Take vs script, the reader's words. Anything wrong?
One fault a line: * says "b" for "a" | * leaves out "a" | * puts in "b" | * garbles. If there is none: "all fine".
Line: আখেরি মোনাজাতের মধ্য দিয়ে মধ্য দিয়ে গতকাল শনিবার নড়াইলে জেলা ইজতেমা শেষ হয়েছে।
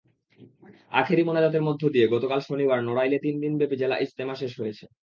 * leaves out "মধ্য দিয়ে"
* puts in "তিন দিনব্যাপী"